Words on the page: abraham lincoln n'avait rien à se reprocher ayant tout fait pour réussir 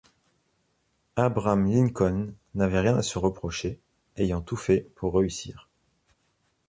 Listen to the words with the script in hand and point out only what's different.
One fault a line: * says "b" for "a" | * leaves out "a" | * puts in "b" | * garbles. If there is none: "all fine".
all fine